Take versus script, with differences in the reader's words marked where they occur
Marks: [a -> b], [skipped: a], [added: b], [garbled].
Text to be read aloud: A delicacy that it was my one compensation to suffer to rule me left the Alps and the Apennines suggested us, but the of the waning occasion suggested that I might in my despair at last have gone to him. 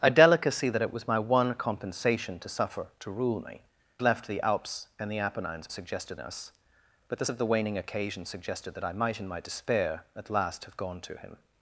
A delicacy that it was my one compensation to suffer to rule me left the Alps and the Apennines suggested us, but the of the waning occasion suggested that I might in my despair at last have gone to him.